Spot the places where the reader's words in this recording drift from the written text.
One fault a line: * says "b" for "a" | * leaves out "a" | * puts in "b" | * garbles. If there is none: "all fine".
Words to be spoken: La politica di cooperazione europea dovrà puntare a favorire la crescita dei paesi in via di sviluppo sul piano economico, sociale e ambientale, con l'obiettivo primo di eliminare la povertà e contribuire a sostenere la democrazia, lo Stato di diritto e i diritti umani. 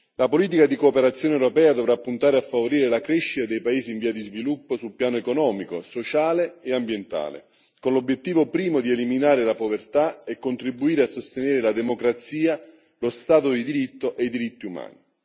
all fine